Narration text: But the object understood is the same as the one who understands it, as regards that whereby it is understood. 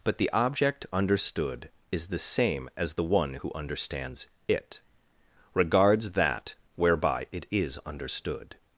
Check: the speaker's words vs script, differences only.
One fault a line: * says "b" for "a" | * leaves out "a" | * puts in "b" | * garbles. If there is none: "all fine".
* leaves out "as"